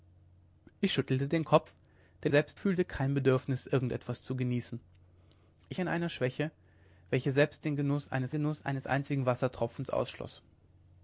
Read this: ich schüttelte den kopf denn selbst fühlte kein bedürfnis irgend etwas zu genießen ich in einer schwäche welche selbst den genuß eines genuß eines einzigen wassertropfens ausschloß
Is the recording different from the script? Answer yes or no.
no